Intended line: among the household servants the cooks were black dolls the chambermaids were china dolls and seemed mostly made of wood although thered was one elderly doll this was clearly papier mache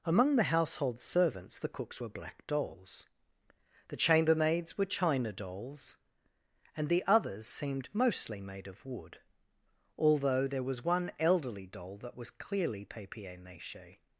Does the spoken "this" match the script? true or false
false